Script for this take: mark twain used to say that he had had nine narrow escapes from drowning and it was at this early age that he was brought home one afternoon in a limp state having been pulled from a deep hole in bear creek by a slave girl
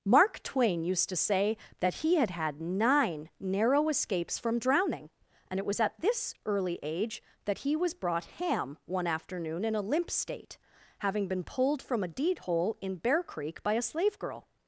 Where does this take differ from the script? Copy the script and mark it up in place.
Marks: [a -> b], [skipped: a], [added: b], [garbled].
mark twain used to say that he had had nine narrow escapes from drowning and it was at this early age that he was brought [home -> ham] one afternoon in a limp state having been pulled from a [deep -> deed] hole in bear creek by a slave girl